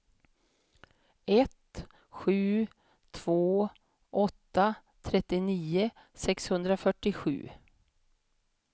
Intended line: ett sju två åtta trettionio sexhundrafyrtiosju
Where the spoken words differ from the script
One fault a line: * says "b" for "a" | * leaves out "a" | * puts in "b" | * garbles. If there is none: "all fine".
all fine